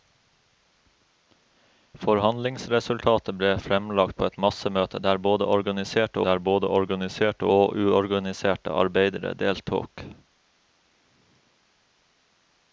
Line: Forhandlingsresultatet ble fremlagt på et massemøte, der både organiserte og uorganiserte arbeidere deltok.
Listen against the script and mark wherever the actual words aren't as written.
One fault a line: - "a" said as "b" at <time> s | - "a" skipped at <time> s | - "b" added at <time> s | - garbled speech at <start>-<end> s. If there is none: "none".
- "der både organiserte" added at 6.3 s